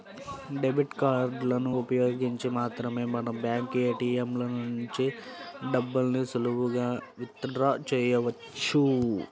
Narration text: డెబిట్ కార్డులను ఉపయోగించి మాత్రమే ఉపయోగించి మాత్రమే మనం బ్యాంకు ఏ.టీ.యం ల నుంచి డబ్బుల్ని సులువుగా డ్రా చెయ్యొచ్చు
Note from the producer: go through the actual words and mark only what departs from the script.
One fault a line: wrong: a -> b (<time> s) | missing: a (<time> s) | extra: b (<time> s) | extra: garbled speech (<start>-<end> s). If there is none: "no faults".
missing: ఉపయోగించి మాత్రమే (3.0 s)
extra: విత్ (7.2 s)